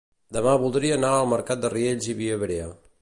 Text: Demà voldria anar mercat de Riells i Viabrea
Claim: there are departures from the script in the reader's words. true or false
true